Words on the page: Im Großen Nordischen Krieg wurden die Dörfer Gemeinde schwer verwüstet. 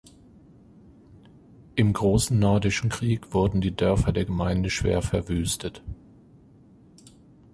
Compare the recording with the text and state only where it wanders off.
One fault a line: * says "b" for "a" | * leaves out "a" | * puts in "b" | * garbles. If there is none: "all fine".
* puts in "der"